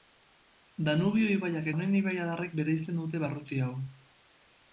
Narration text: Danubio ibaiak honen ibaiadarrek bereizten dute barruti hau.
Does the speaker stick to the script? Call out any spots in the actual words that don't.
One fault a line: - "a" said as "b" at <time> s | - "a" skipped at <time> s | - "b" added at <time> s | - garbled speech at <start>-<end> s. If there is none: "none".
none